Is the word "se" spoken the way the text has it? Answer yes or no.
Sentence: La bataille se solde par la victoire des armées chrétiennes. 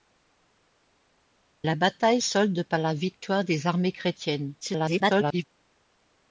no